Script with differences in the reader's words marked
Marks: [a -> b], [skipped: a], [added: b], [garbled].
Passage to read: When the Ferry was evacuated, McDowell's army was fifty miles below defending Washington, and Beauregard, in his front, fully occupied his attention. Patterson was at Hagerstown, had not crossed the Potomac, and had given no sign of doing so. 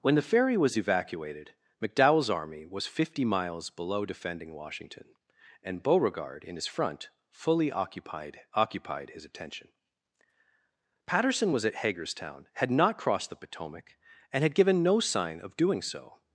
When the Ferry was evacuated, McDowell's army was fifty miles below defending Washington, and Beauregard, in his front, fully occupied [added: occupied] his attention. Patterson was at Hagerstown, had not crossed the Potomac, and had given no sign of doing so.